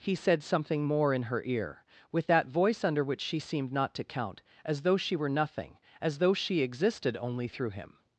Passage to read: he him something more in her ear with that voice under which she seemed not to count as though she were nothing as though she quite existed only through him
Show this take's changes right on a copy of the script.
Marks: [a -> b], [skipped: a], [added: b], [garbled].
he [him -> said] something more in her ear with that voice under which she seemed not to count as though she were nothing as though she [skipped: quite] existed only through him